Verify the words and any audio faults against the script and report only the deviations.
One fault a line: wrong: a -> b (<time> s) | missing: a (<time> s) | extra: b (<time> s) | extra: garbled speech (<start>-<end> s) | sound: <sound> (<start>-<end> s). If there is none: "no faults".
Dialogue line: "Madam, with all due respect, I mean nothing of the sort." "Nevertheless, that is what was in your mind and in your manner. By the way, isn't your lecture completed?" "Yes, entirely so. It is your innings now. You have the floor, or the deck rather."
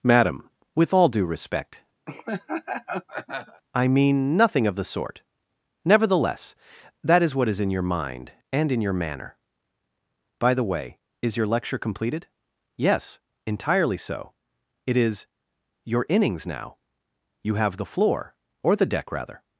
sound: laugh (2.1-3.6 s)
wrong: was -> is (7.5 s)
wrong: isn't -> is (11.2 s)